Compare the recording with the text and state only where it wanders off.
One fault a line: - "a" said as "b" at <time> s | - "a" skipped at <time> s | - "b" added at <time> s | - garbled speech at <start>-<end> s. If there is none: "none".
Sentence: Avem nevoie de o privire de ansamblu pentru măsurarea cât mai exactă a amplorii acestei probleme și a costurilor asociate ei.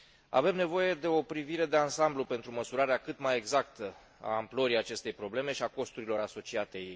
none